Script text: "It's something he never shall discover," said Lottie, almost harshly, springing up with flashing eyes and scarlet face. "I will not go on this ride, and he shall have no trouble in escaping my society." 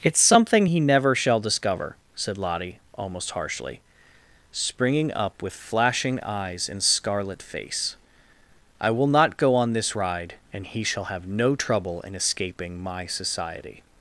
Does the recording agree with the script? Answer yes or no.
yes